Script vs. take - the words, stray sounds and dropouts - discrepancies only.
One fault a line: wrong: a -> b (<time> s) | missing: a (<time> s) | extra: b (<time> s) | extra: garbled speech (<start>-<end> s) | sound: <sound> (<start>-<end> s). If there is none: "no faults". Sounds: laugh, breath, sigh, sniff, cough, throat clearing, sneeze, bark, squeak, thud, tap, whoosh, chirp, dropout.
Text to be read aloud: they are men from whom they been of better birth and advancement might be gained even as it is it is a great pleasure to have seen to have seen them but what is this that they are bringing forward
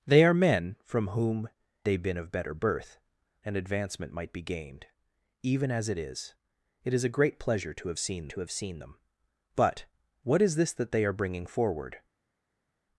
no faults